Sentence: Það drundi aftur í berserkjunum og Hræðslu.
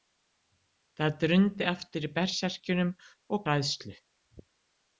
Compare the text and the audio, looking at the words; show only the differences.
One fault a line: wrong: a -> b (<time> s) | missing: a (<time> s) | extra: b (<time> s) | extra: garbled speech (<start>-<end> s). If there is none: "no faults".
no faults